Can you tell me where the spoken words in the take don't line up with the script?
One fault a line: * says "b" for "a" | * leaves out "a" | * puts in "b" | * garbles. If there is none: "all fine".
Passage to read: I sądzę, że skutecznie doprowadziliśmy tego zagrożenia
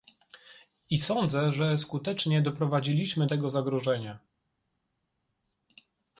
all fine